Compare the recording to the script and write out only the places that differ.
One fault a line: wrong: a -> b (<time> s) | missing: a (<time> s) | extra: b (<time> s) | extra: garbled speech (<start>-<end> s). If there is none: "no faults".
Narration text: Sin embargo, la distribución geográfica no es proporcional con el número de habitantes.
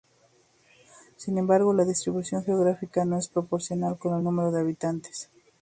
no faults